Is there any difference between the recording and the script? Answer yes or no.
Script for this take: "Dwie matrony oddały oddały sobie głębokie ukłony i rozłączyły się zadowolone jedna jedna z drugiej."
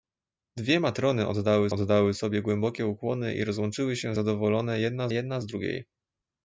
no